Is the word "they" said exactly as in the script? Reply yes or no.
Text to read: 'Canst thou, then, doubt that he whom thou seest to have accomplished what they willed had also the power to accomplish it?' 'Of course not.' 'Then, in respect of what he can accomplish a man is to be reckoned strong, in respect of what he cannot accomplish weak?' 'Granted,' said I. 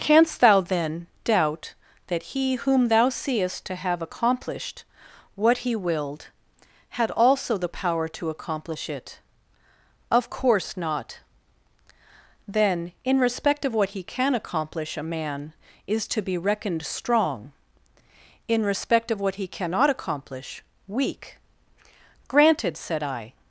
no